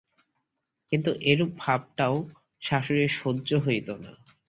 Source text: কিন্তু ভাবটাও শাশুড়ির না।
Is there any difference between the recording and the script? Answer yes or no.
yes